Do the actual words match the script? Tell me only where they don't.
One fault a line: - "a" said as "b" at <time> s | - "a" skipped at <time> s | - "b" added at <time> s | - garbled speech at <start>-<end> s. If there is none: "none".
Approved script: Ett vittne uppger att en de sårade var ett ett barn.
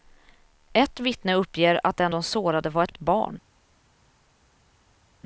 none